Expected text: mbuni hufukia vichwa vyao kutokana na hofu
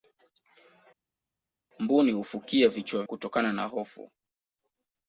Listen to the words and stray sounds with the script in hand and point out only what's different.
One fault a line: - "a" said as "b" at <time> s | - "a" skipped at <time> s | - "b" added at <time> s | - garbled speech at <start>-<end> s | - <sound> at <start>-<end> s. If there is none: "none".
- "vyao" skipped at 3.0 s